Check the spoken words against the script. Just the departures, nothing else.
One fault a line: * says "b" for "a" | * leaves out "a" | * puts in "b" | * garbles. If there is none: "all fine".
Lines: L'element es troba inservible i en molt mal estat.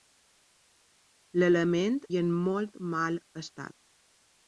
* leaves out "es troba inservible"